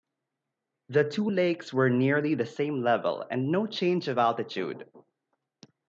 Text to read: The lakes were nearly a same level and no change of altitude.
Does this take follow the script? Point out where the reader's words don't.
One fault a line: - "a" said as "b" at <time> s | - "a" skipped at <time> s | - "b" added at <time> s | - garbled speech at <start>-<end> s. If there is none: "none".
- "two" added at 1.1 s
- "a" said as "the" at 2.3 s